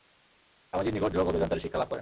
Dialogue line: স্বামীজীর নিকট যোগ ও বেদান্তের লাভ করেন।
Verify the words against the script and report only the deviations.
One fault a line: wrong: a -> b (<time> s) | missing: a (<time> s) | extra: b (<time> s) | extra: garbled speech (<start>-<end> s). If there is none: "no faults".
extra: শিক্ষা (1.6 s)